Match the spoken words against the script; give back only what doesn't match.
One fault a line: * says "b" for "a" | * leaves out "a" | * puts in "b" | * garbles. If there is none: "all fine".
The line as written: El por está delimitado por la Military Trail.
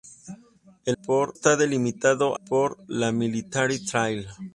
all fine